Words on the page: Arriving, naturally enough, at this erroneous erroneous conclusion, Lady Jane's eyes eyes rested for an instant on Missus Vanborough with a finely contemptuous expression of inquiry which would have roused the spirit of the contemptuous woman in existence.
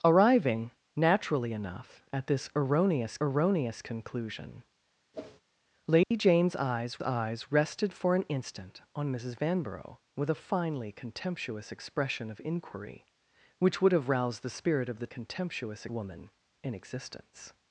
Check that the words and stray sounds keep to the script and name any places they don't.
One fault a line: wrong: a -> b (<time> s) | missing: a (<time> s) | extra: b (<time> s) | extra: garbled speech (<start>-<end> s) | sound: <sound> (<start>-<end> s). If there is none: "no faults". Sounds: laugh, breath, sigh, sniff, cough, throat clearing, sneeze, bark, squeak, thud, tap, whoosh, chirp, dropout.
sound: whoosh (5.1-5.4 s)
sound: dropout (6.0-6.1 s)